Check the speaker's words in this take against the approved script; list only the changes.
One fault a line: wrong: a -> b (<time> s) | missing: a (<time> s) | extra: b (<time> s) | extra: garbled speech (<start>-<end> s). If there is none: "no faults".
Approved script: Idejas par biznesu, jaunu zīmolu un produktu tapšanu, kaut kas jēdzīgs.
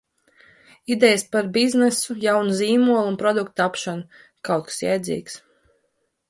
no faults